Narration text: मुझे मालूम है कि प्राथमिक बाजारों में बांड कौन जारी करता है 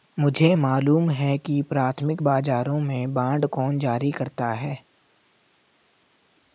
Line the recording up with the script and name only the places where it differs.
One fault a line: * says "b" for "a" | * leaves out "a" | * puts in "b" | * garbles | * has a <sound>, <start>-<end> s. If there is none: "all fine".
all fine